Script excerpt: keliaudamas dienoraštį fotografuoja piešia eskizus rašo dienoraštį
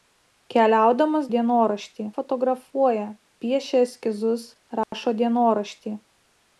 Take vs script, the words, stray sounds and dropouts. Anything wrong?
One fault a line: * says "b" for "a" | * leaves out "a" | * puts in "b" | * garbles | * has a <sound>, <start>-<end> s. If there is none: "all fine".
* has a dropout, 4.8-4.9 s